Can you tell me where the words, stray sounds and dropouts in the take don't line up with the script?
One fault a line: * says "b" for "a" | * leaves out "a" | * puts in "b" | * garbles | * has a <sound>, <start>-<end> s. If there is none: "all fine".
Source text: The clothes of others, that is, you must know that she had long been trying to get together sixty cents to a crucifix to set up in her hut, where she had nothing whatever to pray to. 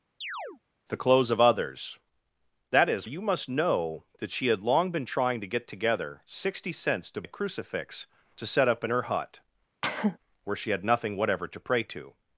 * has a chirp, 0.2-0.6 s
* has a cough, 9.8-10.2 s